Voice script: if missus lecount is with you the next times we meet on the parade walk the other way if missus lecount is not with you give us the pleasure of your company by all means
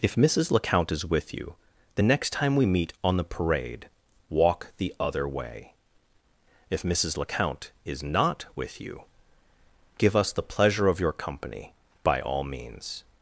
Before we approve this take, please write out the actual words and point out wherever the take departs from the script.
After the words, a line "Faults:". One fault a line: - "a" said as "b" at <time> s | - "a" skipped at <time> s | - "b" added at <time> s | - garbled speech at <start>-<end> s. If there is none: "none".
if missus lecount is with you the next time we meet on the parade walk the other way if missus lecount is not with you give us the pleasure of your company by all means
Faults:
- "times" said as "time" at 2.3 s